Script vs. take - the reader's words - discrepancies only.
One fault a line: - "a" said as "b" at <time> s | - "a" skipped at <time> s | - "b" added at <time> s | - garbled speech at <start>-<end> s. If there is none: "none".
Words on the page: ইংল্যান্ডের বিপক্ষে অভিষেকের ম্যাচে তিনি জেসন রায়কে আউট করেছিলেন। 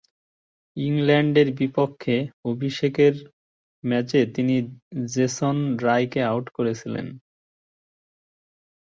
none